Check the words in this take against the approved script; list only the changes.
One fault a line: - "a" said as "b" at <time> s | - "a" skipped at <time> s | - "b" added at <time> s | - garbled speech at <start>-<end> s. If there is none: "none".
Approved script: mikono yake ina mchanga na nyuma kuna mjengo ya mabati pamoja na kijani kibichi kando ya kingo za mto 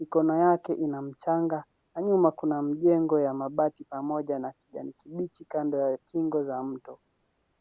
none